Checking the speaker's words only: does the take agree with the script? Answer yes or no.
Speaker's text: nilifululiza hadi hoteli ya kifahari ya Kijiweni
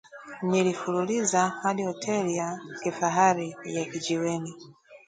yes